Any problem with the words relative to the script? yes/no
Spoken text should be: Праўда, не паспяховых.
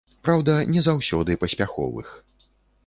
yes